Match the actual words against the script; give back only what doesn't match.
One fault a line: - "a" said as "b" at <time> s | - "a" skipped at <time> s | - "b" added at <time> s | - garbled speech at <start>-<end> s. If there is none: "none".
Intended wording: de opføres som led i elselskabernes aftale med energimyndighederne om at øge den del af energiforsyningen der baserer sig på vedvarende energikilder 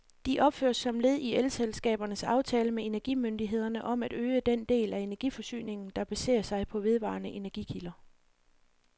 none